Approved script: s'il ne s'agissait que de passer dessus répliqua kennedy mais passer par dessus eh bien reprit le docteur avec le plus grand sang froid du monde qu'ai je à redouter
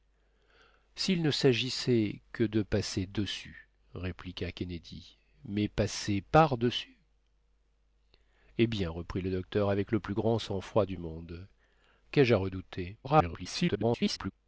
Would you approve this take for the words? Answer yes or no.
no